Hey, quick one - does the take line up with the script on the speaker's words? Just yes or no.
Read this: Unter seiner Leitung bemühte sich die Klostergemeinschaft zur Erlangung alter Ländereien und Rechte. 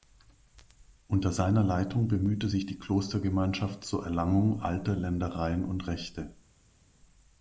yes